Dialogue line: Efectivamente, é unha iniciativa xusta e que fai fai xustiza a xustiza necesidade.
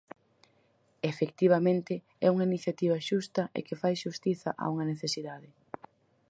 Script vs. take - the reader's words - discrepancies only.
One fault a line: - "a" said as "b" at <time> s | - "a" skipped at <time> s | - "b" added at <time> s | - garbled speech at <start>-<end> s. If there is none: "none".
- "fai" skipped at 3.9 s
- "xustiza" said as "unha" at 4.7 s